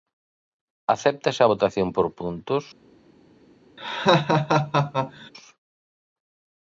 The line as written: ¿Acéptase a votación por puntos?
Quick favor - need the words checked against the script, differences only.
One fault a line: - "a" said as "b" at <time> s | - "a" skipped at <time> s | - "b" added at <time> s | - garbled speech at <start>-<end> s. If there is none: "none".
none